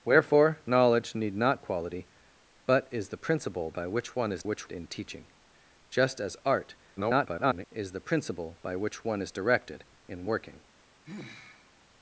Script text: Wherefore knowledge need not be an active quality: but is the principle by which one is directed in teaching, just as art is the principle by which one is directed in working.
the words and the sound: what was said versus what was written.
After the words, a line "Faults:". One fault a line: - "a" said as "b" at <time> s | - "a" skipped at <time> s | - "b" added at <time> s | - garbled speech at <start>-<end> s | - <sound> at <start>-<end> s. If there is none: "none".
Wherefore knowledge need not quality: but is the principle by which one is which in teaching, just as art [garbled] is the principle by which one is directed in working.
Faults:
- "be an active" skipped at 1.6 s
- "directed" said as "which" at 4.4 s
- garbled speech at 7.0-7.7 s
- sigh at 11.0-11.7 s